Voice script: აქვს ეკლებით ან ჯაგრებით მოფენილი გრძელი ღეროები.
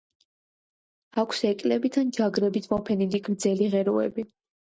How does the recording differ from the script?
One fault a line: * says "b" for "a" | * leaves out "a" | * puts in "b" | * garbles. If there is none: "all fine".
all fine